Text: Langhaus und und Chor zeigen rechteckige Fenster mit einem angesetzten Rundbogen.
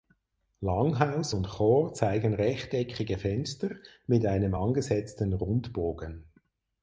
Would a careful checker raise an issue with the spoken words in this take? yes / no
yes